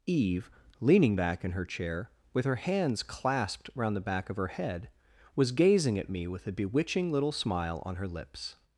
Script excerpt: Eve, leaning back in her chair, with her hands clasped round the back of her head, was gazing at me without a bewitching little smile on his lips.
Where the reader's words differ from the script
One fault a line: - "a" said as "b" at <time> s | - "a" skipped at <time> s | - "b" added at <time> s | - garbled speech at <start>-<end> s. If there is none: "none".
- "without" said as "with" at 6.3 s
- "his" said as "her" at 8.0 s